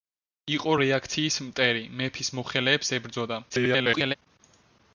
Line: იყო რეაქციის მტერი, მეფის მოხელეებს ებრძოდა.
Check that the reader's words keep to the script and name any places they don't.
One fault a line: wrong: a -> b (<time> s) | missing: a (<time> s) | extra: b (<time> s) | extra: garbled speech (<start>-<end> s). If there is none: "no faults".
extra: garbled speech (3.5-4.1 s)